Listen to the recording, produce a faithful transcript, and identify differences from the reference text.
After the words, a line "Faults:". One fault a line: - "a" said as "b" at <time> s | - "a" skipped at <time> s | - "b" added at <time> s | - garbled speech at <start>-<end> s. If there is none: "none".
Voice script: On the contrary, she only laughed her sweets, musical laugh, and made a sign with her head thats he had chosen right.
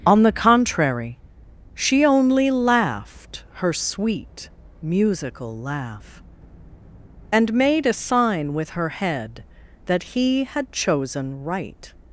On the contrary, she only laughed her sweet, musical laugh, and made a sign with her head that he had chosen right.
Faults:
- "sweets" said as "sweet" at 3.7 s
- "thats" said as "that" at 9.9 s